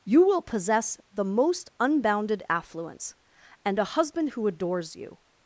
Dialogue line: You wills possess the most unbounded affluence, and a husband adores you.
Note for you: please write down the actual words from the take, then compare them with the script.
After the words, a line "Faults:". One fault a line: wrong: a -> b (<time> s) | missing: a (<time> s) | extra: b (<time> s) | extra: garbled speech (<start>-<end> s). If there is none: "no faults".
You will possess the most unbounded affluence, and a husband who adores you.
Faults:
wrong: wills -> will (0.2 s)
extra: who (4.3 s)